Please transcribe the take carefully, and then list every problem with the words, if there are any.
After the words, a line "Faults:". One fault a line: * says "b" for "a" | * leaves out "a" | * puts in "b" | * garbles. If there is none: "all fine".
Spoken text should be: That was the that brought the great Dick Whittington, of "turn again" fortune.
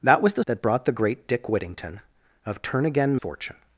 That was the that brought the great Dick Whittington, of "turn again" fortune.
Faults:
all fine